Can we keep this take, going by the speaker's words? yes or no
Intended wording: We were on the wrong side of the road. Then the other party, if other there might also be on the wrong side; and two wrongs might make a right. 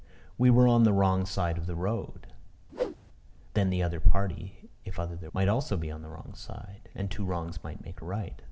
yes